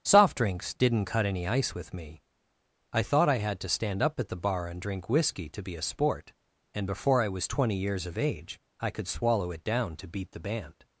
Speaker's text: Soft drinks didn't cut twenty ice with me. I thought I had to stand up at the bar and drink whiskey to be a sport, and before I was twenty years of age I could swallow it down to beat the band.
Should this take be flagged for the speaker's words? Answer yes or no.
yes